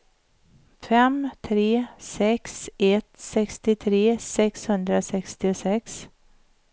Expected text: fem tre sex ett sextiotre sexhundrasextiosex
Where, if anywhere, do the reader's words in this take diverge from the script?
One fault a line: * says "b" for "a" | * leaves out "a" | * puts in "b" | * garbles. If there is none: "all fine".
all fine